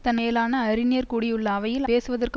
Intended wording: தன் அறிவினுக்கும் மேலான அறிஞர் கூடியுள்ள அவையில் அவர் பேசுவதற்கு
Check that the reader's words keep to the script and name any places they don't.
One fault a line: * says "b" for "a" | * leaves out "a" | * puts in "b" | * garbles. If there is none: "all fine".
* leaves out "அறிவினுக்கும்"
* leaves out "அவர்"